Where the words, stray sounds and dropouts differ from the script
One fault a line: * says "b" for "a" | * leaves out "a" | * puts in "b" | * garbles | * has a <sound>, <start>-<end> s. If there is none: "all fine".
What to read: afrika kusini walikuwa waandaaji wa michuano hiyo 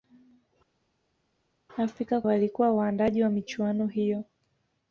* leaves out "kusini"